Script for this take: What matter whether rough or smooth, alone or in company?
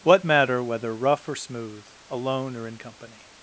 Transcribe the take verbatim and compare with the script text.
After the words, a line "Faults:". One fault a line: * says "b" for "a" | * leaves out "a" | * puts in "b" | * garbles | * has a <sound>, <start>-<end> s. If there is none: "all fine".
What matter whether rough or smooth, alone or in company?
Faults:
all fine